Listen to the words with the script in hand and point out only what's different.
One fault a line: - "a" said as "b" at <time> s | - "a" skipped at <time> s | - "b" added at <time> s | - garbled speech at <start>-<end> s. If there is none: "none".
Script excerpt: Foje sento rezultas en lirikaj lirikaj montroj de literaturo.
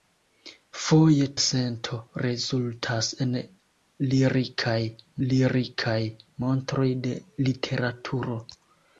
none